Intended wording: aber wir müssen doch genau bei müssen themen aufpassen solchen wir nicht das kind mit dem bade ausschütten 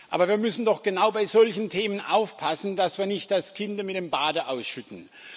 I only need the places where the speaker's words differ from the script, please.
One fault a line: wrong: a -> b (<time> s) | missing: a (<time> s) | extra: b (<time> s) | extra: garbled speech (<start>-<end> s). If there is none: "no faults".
wrong: müssen -> solchen (1.3 s)
wrong: solchen -> dass (2.8 s)